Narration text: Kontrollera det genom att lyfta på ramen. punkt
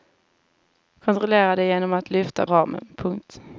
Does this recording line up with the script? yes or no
no